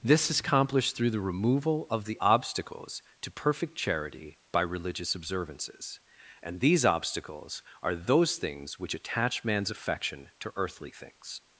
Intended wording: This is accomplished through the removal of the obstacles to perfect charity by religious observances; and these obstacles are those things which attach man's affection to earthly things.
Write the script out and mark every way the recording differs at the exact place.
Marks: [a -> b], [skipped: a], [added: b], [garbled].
This is accomplished through the removal of the obstacles to perfect charity by religious observances; and these obstacles are those things which attach man's affection to earthly things.